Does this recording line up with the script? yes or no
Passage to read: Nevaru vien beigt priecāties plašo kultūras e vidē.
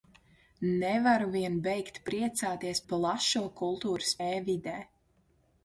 yes